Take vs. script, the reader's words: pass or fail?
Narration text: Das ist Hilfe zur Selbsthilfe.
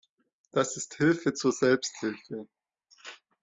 pass